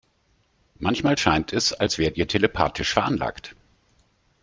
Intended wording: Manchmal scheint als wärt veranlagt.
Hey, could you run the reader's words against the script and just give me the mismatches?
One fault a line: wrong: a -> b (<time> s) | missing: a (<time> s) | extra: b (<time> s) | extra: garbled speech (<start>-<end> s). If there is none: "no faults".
extra: es (1.5 s)
extra: ihr telepathisch (2.2 s)